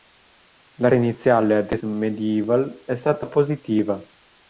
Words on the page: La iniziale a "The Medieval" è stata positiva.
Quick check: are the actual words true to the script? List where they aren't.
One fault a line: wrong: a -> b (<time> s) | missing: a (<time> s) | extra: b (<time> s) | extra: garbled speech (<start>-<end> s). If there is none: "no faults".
no faults